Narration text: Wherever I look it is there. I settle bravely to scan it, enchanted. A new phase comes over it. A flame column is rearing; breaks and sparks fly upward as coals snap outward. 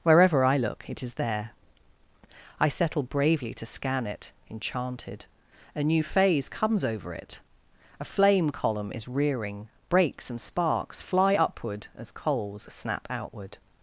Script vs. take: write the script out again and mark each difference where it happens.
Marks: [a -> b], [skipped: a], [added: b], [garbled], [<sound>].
Wherever I look it is there. I settle bravely to scan it, enchanted. A new phase comes over it. A flame column is rearing; breaks and sparks fly upward as coals snap outward.